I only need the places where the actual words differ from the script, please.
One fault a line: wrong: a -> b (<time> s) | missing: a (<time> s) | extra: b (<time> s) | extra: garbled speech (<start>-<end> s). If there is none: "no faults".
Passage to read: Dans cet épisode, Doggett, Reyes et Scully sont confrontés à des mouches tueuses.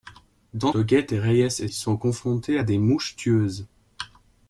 missing: cet épisode (0.7 s)
missing: Scully (1.7 s)